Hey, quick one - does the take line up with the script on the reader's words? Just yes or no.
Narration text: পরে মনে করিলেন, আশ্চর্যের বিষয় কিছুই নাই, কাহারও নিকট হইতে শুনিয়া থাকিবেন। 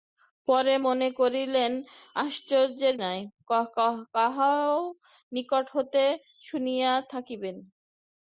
no